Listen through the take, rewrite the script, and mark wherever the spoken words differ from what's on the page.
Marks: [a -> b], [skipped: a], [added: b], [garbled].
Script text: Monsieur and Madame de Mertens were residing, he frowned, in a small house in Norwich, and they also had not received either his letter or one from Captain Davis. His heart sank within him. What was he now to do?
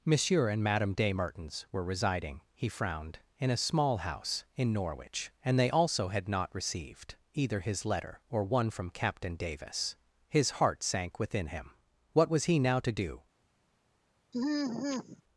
Monsieur and Madame de Mertens were residing, he frowned, in a small house in Norwich, and they also had not received either his letter or one from Captain Davis. His heart sank within him. What was he now to do?